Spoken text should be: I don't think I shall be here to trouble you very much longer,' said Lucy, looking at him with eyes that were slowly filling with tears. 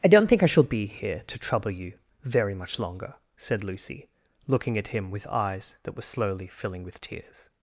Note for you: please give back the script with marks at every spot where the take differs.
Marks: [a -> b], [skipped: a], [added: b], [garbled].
I don't think I shall be here to trouble you very much longer,' said Lucy, looking at him with eyes that were slowly filling with tears.